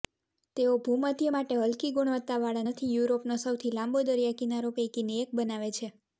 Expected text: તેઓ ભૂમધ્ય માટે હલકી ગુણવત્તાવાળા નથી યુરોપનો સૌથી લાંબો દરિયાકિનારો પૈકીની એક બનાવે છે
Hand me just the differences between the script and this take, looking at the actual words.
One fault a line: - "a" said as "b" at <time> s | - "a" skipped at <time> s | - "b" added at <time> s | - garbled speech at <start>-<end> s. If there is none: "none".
none